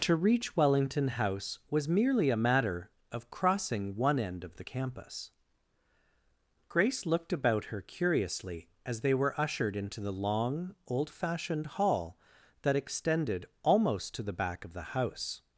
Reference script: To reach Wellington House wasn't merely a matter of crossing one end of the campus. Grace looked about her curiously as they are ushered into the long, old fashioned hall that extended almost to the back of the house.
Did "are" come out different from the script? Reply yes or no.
yes